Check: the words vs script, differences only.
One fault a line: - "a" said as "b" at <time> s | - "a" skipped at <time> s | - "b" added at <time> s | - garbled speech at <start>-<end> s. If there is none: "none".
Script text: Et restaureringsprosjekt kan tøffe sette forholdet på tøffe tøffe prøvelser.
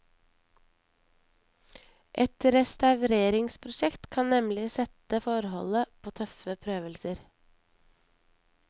- "tøffe" said as "nemlig" at 4.3 s
- "tøffe" skipped at 6.5 s